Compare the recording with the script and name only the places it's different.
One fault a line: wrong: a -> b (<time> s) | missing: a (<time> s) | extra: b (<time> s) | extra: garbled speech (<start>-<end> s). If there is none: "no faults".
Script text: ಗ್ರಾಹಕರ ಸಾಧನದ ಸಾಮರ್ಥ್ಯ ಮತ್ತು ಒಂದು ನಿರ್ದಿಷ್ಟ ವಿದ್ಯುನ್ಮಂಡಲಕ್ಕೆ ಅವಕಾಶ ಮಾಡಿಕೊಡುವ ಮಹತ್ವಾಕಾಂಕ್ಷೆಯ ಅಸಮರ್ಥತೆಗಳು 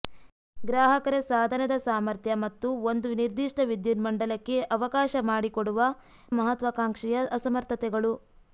no faults